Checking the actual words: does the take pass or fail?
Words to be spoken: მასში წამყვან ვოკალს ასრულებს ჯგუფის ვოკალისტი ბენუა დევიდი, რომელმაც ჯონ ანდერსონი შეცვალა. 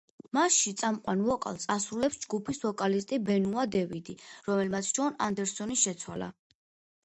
pass